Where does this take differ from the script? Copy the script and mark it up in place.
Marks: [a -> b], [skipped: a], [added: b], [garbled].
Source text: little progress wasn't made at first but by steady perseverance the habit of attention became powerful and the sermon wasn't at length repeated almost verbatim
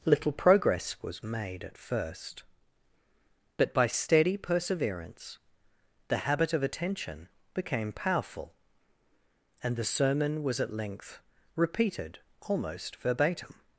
little progress [wasn't -> was] made at first but by steady perseverance the habit of attention became powerful and the sermon [wasn't -> was] at length repeated almost verbatim